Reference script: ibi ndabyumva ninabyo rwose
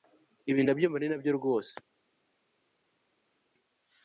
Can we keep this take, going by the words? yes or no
yes